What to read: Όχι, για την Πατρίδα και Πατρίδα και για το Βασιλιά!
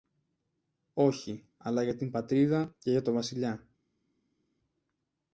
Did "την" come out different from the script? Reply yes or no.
no